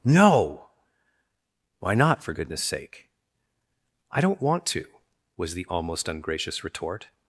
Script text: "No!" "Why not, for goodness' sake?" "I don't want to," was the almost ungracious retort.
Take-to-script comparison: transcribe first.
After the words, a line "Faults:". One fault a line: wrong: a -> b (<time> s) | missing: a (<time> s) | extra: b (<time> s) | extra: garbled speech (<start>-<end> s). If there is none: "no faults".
"No!" "Why not, for goodness' sake?" "I don't want to," was the almost ungracious retort.
Faults:
no faults